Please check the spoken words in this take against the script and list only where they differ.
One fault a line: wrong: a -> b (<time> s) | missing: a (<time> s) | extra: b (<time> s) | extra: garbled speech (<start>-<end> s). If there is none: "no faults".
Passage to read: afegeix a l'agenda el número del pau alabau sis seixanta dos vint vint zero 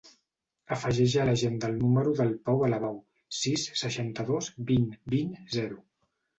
no faults